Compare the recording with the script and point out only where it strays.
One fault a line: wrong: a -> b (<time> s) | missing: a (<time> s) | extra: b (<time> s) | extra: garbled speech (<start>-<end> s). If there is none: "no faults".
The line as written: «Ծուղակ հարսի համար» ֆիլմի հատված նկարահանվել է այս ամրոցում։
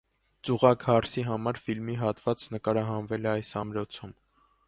no faults